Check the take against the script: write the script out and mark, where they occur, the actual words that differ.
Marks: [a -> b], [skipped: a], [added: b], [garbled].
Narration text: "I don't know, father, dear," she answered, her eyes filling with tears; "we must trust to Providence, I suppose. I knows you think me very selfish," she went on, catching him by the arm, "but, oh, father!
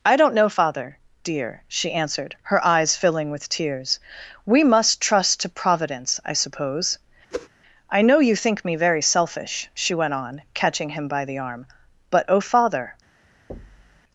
"I don't know, father, dear," she answered, her eyes filling with tears; "we must trust to Providence, I suppose. I [knows -> know] you think me very selfish," she went on, catching him by the arm, "but, oh, father!